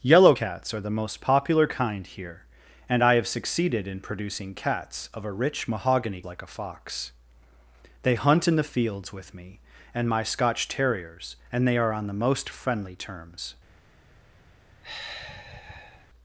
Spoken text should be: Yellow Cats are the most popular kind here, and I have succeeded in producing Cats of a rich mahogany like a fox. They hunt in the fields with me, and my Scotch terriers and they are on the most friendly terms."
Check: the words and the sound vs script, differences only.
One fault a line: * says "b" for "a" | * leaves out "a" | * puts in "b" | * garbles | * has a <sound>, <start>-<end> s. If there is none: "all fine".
* has a sigh, 14.8-16.1 s